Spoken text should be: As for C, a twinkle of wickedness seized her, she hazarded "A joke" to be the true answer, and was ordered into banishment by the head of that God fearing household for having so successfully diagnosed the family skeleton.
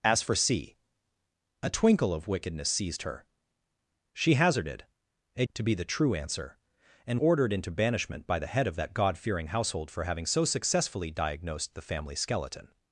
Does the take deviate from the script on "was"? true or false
true